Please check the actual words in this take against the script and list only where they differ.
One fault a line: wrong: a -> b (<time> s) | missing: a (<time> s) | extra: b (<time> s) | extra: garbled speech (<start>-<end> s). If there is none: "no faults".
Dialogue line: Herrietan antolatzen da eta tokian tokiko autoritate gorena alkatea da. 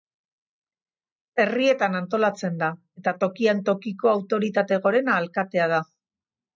no faults